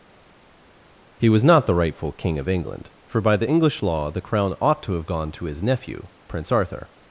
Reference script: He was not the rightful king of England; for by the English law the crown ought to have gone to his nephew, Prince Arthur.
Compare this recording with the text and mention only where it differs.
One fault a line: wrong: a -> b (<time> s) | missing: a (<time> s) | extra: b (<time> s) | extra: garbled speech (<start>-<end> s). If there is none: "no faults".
no faults